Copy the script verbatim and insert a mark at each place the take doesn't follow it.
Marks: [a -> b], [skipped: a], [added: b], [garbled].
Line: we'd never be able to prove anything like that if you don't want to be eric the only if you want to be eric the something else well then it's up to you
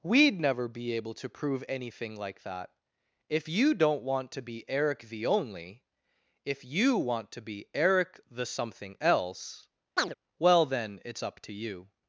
we'd never be able to prove anything like that if you don't want to be eric the only if you want to be eric the something else well then it's up to you